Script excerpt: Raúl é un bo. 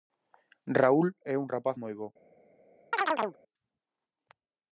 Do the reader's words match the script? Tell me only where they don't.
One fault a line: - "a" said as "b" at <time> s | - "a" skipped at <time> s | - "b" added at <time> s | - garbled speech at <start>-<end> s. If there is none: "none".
- "rapaz moi" added at 1.5 s